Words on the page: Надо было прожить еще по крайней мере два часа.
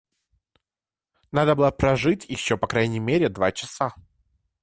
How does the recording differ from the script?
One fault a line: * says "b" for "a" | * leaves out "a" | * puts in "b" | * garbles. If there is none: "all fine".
all fine